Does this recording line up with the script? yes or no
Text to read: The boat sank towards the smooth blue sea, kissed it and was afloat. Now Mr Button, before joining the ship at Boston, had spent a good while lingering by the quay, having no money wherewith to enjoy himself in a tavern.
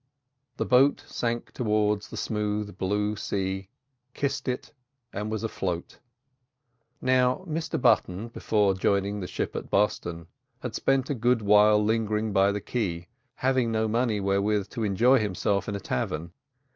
yes